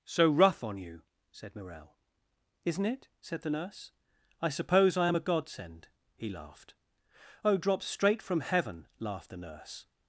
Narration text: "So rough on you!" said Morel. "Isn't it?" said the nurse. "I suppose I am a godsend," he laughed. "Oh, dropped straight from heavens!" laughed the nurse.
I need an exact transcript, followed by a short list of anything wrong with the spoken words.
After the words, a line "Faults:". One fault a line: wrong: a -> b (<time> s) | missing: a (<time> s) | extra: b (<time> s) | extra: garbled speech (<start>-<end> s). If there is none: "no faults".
"So rough on you!" said Morel. "Isn't it?" said the nurse. "I suppose I am a godsend," he laughed. "Oh, dropped straight from heaven!" laughed the nurse.
Faults:
wrong: heavens -> heaven (8.4 s)